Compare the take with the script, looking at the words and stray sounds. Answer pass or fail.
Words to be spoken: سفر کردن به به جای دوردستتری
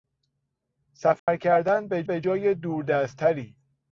fail